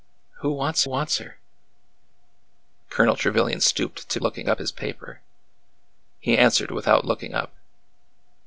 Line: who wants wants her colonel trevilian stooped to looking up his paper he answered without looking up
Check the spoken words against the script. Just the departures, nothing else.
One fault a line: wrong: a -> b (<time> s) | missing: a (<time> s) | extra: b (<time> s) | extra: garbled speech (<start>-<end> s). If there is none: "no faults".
no faults